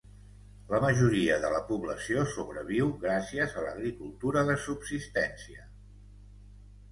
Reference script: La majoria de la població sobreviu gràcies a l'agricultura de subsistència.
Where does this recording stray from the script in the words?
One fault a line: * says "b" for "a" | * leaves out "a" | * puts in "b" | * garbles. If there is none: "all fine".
all fine